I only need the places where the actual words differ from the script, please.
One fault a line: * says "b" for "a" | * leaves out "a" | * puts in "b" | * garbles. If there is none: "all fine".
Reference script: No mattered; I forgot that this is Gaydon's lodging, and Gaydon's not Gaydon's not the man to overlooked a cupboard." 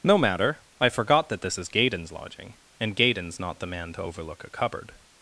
* says "matter" for "mattered"
* leaves out "Gaydon's not"
* says "overlook" for "overlooked"